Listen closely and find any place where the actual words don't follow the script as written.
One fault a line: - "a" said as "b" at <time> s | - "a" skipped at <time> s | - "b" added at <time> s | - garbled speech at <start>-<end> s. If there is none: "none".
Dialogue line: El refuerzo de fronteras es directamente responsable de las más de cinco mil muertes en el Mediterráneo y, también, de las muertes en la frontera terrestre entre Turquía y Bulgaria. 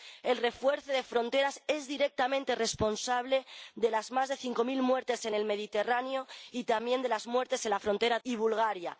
- "terrestre entre Turquía" skipped at 8.2 s